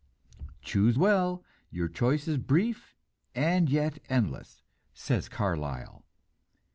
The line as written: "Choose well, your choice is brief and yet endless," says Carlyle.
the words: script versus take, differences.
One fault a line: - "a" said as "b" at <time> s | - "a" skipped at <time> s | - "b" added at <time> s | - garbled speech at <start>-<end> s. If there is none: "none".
none